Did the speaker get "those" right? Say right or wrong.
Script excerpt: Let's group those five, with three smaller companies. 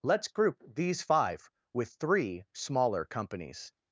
wrong